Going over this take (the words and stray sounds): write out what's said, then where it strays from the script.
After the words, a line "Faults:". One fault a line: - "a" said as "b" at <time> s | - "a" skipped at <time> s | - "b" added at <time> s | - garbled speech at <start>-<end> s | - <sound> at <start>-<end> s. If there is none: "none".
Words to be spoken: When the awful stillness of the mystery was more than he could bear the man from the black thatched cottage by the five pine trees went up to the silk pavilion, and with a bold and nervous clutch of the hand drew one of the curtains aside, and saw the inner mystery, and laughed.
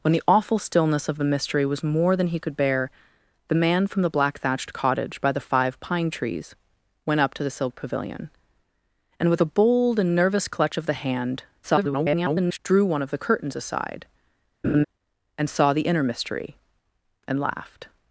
When the awful stillness of the mystery was more than he could bear the man from the black thatched cottage by the five pine trees went up to the silk pavilion, and with a bold and nervous clutch of the hand [garbled] drew one of the curtains aside, and saw the inner mystery, and laughed.
Faults:
- garbled speech at 11.6-12.6 s
- laugh at 14.6-14.8 s